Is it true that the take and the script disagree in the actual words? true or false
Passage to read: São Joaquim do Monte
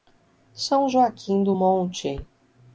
false